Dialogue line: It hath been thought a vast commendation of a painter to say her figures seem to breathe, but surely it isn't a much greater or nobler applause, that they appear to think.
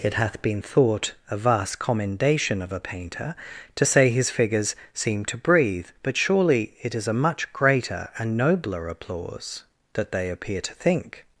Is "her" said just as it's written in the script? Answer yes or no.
no